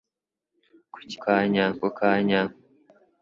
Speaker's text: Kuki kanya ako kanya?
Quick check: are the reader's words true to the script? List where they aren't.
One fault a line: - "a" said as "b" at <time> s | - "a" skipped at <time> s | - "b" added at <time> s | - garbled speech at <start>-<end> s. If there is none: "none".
none